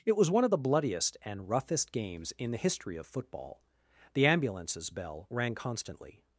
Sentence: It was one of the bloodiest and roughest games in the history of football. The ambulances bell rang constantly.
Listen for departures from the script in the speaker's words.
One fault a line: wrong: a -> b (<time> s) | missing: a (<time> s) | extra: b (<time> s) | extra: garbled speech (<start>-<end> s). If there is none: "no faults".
no faults